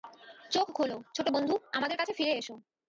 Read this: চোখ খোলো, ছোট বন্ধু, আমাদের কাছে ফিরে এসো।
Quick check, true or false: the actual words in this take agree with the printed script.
true